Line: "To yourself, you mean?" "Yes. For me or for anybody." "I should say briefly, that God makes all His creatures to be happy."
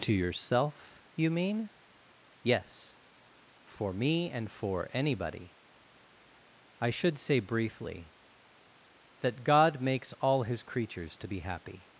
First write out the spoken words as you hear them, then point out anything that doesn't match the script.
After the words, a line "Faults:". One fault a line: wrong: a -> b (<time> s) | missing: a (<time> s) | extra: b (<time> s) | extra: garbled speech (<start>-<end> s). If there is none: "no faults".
"To yourself, you mean?" "Yes. For me and for anybody." "I should say briefly, that God makes all His creatures to be happy."
Faults:
wrong: or -> and (4.3 s)